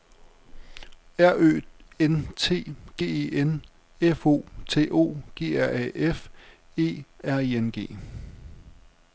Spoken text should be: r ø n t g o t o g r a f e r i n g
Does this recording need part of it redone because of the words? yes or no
yes